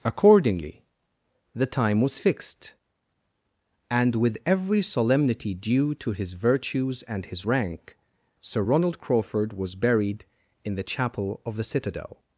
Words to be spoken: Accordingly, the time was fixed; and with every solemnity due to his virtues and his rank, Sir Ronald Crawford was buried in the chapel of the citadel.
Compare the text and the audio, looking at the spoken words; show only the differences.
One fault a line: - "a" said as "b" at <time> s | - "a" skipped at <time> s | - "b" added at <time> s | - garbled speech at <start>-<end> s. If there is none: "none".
none